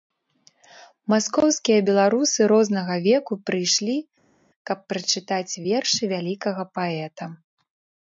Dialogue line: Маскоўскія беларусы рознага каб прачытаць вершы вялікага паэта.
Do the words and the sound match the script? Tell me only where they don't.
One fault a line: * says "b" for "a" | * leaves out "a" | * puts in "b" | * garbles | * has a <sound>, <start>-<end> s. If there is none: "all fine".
* puts in "веку прыйшлі"